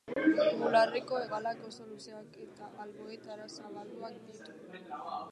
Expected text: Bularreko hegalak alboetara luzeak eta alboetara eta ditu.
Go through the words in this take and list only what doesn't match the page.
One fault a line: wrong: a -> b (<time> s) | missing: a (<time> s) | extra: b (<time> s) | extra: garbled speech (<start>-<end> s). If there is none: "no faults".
wrong: alboetara -> oso (1.7 s)
wrong: eta -> zabalduak (3.6 s)